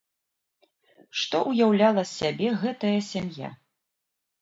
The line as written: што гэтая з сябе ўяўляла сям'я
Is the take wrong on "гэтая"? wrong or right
wrong